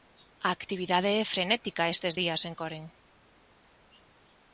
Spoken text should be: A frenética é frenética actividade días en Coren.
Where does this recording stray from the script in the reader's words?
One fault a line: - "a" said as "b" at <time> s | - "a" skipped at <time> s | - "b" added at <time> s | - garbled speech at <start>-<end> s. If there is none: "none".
- "frenética" said as "actividade" at 0.6 s
- "actividade" said as "estes" at 1.9 s